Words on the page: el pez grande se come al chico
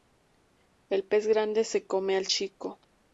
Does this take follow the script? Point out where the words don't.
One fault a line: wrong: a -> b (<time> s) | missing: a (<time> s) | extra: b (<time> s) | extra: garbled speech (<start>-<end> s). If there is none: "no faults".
no faults